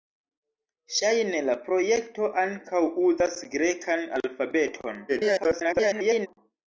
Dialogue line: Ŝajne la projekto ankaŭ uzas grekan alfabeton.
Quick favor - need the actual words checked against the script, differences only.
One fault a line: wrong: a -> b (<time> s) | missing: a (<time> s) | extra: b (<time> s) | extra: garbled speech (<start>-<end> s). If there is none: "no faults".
extra: garbled speech (5.1-6.3 s)